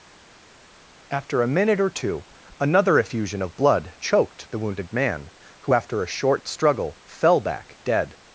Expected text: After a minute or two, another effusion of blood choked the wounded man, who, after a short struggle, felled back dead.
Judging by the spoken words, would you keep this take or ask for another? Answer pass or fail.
fail